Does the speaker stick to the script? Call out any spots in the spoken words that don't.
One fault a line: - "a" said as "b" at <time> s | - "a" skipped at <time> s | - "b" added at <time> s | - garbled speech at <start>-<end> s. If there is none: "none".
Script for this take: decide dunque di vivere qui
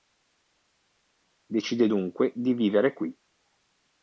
none